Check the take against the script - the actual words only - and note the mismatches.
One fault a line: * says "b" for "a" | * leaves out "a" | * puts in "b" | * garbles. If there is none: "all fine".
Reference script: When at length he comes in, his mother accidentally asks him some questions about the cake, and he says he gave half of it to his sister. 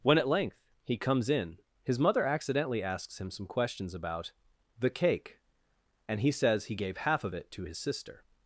all fine